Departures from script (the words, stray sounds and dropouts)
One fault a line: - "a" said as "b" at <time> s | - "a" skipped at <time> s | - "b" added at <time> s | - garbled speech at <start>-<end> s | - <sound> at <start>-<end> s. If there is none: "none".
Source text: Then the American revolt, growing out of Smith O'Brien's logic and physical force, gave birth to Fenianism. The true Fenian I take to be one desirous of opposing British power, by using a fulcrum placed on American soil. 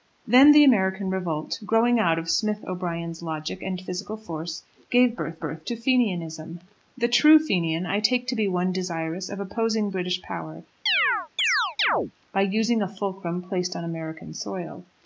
- "birth" added at 5.4 s
- chirp at 10.9-12.1 s